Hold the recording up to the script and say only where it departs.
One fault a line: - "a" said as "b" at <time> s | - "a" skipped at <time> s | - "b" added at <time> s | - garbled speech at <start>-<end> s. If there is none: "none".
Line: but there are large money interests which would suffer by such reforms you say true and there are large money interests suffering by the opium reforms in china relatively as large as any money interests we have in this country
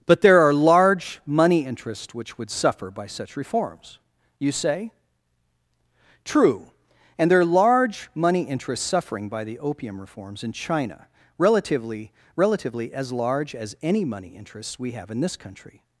- "relatively" added at 12.4 s